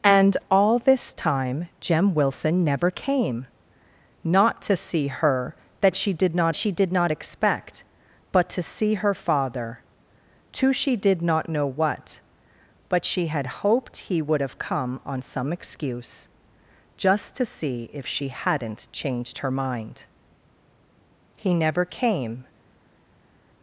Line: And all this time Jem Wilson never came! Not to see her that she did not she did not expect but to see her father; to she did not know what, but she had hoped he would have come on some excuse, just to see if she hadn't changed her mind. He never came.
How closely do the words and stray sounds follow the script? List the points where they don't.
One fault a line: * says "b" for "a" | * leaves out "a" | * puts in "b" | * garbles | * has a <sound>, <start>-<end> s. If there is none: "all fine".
all fine